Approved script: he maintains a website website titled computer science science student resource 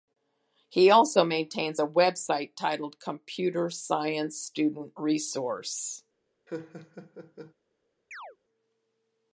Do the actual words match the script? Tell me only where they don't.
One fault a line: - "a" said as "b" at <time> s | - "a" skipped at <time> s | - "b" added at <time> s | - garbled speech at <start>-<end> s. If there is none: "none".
- "also" added at 0.9 s
- "website" skipped at 2.6 s
- "science" skipped at 4.4 s